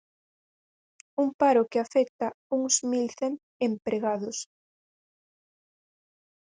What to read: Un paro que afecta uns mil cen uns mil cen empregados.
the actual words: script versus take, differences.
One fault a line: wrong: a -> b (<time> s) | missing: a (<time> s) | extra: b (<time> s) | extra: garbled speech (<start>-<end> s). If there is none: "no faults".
missing: uns mil cen (3.3 s)